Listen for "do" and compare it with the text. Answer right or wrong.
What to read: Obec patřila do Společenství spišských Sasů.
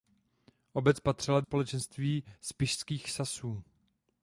wrong